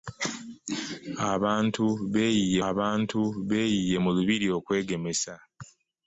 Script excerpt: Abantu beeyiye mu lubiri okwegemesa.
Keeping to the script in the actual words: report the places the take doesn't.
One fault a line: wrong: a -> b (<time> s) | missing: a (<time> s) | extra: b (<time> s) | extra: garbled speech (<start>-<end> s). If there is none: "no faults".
extra: abantu beeyiye (2.7 s)